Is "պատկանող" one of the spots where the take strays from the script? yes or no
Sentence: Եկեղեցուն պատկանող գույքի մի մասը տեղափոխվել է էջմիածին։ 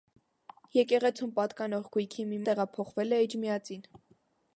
no